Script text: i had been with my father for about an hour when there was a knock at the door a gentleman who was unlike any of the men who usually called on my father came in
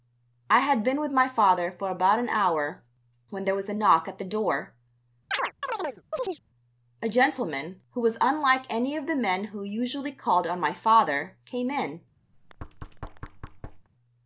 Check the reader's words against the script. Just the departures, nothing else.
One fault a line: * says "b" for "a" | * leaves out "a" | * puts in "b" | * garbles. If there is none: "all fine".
all fine